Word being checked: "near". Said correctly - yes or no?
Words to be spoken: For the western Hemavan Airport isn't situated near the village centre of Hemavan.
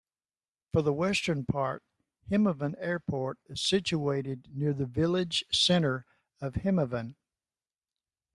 yes